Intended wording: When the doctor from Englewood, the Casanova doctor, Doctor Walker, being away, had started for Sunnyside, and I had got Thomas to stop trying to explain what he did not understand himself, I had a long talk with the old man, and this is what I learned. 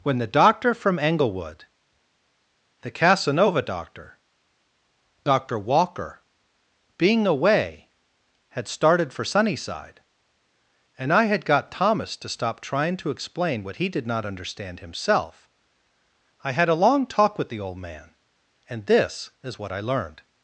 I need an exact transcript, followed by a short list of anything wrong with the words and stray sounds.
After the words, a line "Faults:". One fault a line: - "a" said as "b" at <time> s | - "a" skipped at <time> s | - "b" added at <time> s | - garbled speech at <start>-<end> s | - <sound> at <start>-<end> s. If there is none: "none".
When the doctor from Englewood, the Casanova doctor, Doctor Walker, being away, had started for Sunnyside, and I had got Thomas to stop trying to explain what he did not understand himself, I had a long talk with the old man, and this is what I learned.
Faults:
none